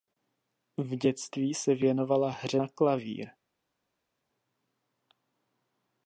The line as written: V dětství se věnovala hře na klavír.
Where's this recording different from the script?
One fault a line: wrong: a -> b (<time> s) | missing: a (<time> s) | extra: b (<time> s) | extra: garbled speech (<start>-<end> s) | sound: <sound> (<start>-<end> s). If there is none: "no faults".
no faults